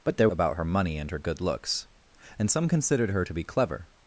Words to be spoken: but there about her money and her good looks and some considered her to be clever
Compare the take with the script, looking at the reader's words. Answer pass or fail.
pass